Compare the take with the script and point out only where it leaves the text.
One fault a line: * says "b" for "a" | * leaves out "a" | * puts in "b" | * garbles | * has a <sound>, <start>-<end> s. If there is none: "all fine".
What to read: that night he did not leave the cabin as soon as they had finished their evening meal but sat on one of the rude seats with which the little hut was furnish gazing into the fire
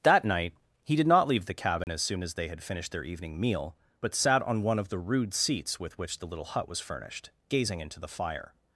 * has a dropout, 1.8-1.9 s
* says "furnished" for "furnish"